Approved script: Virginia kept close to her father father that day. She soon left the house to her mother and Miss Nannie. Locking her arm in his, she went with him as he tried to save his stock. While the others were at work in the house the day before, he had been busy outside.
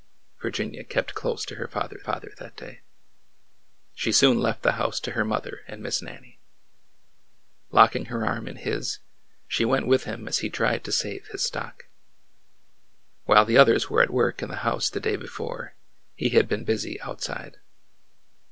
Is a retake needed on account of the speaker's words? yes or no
no